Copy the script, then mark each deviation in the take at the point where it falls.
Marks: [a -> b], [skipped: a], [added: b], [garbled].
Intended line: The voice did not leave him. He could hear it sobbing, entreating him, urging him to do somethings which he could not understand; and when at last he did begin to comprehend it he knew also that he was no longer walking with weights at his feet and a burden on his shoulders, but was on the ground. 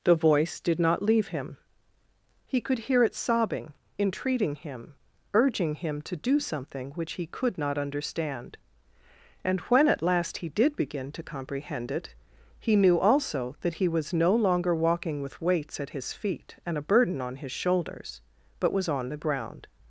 The voice did not leave him. He could hear it sobbing, entreating him, urging him to do [somethings -> something] which he could not understand; and when at last he did begin to comprehend it he knew also that he was no longer walking with weights at his feet and a burden on his shoulders, but was on the ground.